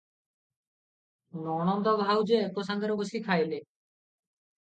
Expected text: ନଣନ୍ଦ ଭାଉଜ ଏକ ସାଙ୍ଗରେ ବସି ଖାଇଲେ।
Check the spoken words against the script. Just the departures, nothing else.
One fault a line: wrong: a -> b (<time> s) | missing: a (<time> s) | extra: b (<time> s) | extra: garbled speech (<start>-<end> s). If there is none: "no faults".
no faults